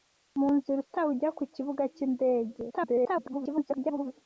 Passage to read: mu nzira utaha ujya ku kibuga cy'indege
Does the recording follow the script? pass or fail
fail